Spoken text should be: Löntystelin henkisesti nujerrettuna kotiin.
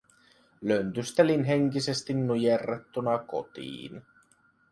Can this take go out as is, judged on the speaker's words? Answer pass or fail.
pass